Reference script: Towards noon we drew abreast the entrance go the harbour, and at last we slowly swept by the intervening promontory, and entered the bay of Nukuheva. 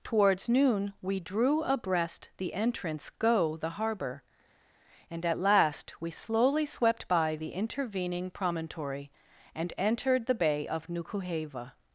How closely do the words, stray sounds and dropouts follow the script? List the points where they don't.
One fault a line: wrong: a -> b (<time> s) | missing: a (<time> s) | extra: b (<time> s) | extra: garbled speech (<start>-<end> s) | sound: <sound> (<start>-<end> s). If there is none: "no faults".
no faults